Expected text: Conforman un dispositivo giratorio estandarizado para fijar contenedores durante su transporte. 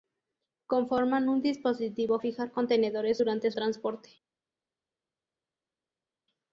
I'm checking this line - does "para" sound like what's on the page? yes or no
no